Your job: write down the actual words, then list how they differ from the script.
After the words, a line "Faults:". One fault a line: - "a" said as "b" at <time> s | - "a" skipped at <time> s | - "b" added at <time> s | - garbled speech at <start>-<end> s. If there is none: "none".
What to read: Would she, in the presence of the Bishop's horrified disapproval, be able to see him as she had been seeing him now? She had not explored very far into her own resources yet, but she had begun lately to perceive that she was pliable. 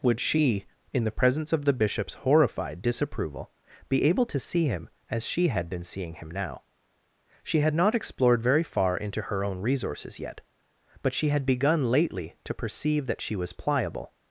Would she, in the presence of the Bishop's horrified disapproval, be able to see him as she had been seeing him now? She had not explored very far into her own resources yet, but she had begun lately to perceive that she was pliable.
Faults:
none